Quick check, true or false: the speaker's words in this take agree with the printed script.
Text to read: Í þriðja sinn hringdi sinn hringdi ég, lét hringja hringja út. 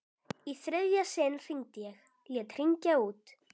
false